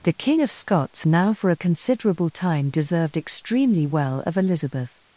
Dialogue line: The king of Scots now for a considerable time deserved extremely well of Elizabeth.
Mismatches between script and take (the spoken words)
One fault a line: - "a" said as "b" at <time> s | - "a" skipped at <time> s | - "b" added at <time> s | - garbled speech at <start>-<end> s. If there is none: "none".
none